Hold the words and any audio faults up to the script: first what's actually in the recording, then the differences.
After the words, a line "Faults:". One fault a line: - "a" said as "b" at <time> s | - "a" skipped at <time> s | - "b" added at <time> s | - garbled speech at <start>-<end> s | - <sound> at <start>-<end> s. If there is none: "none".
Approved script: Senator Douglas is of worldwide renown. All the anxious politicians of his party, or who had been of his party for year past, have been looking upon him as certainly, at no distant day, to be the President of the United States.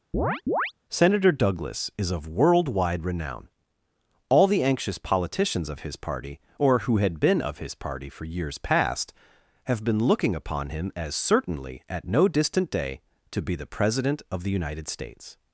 Senator Douglas is of worldwide renown. All the anxious politicians of his party, or who had been of his party for years past, have been looking upon him as certainly, at no distant day, to be the President of the United States.
Faults:
- chirp at 0.1-0.7 s
- "year" said as "years" at 8.2 s